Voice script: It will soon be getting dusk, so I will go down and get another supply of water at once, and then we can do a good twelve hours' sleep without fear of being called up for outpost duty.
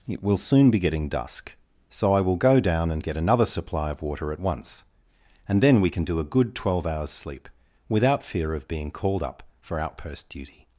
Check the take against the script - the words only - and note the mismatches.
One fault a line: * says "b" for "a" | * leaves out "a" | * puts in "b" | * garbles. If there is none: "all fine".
all fine